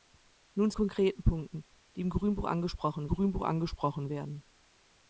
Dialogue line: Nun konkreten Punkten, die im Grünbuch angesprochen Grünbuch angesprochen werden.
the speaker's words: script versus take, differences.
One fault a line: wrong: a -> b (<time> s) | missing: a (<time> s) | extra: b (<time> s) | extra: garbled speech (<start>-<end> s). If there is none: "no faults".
no faults